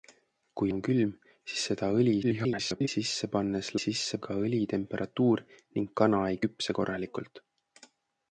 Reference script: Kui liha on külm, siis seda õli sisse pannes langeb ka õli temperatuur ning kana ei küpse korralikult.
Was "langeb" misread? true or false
true